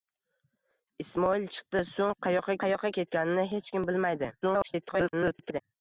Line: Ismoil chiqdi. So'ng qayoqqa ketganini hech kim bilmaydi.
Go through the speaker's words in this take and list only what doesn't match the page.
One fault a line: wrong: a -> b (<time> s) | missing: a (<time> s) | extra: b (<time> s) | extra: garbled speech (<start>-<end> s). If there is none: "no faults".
extra: qayoqqa (2.7 s)
extra: garbled speech (4.4-5.6 s)